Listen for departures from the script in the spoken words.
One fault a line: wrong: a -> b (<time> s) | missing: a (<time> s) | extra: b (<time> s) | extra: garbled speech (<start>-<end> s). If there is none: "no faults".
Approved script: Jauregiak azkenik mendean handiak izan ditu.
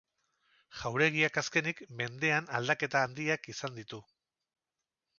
extra: aldaketa (2.6 s)